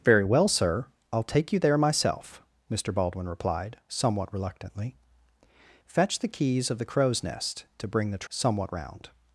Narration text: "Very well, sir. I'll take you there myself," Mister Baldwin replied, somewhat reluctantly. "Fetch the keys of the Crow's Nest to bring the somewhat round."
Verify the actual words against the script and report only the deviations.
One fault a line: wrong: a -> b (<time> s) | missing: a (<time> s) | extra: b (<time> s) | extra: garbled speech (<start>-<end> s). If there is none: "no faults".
no faults